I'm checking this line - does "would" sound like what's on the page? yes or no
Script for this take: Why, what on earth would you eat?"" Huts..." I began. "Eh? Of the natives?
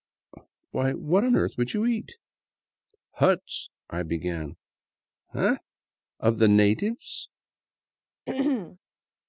yes